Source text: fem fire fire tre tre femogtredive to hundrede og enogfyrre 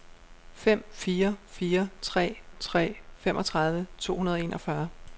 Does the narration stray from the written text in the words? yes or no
no